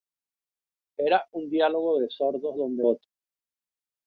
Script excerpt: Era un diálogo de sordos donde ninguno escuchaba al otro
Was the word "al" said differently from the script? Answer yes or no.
yes